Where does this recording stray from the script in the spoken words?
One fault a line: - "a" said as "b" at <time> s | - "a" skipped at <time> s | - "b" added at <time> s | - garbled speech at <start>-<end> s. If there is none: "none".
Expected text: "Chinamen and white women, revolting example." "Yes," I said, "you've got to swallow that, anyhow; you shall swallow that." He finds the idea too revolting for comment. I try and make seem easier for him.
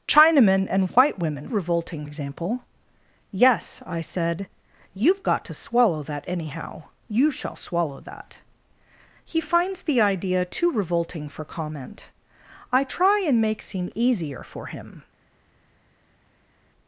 none